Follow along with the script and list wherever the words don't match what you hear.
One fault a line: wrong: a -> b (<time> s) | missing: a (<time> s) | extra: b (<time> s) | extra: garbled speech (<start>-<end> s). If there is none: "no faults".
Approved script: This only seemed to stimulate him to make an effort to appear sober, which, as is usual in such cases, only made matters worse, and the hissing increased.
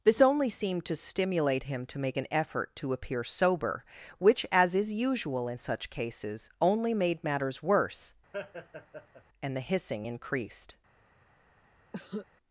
no faults